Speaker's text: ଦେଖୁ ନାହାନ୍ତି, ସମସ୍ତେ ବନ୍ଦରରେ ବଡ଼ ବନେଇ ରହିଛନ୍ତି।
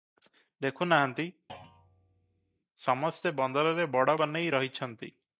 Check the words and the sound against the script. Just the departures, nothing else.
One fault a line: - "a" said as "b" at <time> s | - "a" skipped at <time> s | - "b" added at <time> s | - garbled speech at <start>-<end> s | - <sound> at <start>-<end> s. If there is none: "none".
- thud at 1.5-2.6 s